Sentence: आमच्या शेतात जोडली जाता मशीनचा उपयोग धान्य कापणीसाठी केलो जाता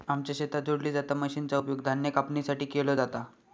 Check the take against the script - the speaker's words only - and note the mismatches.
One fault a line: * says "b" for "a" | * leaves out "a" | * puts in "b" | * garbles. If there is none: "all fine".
all fine